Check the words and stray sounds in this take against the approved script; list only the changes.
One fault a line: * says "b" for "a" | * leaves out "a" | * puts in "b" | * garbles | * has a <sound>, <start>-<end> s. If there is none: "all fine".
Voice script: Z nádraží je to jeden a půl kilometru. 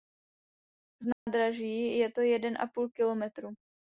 * has a dropout, 1.1-1.3 s